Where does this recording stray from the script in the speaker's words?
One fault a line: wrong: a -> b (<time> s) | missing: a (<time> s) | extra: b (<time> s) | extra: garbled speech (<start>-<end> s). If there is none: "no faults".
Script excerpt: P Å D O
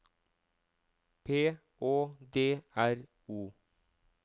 extra: R (2.9 s)